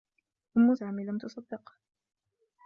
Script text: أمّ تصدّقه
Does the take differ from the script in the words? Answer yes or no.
yes